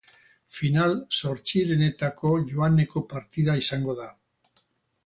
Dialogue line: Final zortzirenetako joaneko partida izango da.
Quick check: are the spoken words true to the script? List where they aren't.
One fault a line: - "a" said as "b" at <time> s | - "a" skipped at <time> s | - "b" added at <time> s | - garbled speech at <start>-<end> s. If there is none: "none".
none